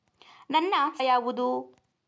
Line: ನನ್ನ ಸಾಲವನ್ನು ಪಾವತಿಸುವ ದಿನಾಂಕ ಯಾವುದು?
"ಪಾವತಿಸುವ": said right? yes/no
no